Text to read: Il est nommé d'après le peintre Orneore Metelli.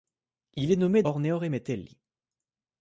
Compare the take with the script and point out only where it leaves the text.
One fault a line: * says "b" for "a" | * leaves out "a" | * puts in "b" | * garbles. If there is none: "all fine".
* leaves out "d'après le peintre"